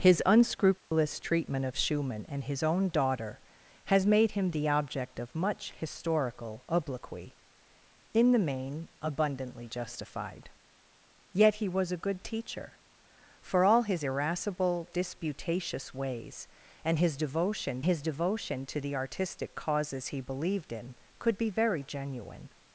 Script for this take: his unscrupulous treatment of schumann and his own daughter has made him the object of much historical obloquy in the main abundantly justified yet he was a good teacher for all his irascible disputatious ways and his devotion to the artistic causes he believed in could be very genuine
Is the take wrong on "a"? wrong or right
right